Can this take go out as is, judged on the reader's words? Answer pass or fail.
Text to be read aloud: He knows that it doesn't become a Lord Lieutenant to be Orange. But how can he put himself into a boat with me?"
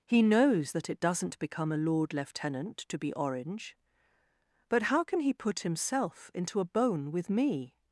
fail